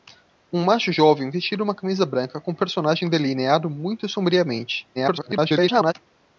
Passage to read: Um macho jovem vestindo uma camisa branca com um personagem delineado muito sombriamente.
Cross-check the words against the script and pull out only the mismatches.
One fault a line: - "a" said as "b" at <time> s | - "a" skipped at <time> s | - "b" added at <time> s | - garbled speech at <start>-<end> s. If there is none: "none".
- garbled speech at 5.0-5.9 s